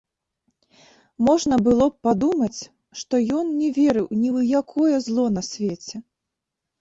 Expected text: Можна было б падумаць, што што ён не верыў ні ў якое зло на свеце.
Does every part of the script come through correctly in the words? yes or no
no